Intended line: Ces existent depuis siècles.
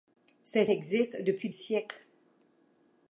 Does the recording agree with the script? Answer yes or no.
yes